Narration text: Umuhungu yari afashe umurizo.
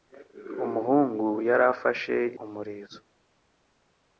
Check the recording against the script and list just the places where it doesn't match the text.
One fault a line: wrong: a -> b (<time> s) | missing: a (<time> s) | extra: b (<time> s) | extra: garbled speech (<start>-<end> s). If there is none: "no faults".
no faults